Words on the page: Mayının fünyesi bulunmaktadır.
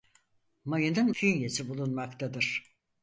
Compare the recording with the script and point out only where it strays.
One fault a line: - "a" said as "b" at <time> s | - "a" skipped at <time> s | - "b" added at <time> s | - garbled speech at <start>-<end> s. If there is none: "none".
none